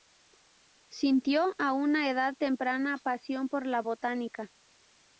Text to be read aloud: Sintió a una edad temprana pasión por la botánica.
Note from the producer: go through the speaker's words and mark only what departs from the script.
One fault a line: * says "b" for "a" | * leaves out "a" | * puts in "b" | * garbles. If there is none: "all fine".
all fine